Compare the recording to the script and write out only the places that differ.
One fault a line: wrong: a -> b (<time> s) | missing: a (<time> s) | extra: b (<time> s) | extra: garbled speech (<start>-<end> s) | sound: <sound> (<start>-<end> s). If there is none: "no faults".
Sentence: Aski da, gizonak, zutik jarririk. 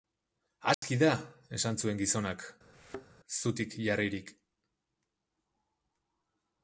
sound: dropout (0.7-0.8 s)
extra: esan zuen (1.6 s)
sound: thud (2.7-3.1 s)